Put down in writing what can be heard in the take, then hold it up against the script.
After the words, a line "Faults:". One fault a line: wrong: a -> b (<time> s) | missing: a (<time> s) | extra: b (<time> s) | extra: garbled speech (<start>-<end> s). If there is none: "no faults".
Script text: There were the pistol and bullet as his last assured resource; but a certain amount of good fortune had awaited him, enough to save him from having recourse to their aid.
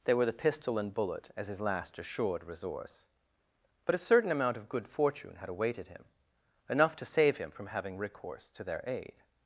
There were the pistol and bullet as his last assured resource; but a certain amount of good fortune had awaited him, enough to save him from having recourse to their aid.
Faults:
no faults